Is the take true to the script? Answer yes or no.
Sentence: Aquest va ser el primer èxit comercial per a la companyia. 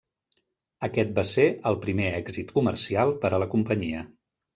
yes